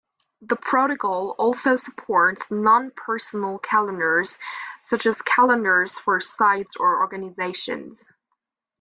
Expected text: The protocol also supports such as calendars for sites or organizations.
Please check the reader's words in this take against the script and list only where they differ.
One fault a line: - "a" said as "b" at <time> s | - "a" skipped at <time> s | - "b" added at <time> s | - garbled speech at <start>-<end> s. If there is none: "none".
- "non personal calendars" added at 2.5 s